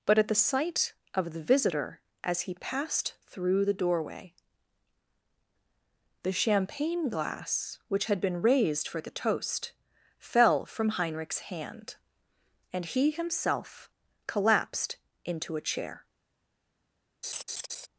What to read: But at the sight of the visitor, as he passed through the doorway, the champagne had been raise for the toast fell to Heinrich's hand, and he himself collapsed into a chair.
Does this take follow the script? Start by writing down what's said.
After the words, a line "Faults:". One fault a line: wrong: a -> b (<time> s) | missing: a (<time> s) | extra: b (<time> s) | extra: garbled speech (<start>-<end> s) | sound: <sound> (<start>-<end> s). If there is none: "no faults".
But at the sight of the visitor, as he passed through the doorway, the champagne glass which had been raised for the toast fell from Heinrich's hand, and he himself collapsed into a chair.
Faults:
extra: glass which (7.1 s)
wrong: raise -> raised (8.4 s)
wrong: to -> from (10.7 s)
sound: laugh (17.2-17.9 s)